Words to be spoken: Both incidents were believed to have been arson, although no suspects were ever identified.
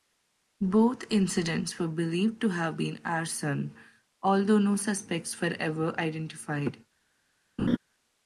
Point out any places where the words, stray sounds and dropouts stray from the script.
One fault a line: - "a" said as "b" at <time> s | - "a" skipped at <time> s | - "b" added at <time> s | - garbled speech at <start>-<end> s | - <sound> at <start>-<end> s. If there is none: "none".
- laugh at 7.6-7.8 s